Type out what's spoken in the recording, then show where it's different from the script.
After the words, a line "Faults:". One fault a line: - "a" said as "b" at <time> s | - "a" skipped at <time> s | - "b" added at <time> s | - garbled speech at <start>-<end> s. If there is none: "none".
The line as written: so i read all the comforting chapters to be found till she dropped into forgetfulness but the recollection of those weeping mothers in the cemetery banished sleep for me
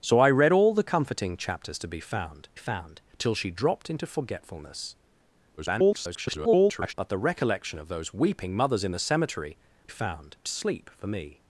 so i read all the comforting chapters to be found found till she dropped into forgetfulness [garbled] but the recollection of those weeping mothers in the cemetery found sleep for me
Faults:
- "found" added at 2.5 s
- garbled speech at 5.6-6.9 s
- "banished" said as "found" at 9.9 s